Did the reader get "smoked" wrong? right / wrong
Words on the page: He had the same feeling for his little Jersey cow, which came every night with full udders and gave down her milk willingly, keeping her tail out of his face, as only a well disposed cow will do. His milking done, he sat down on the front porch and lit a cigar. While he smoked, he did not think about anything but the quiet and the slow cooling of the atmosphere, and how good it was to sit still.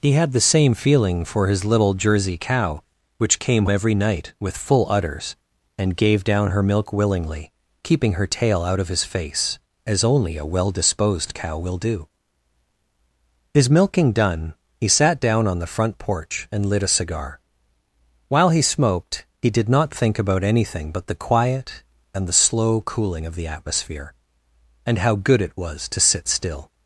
right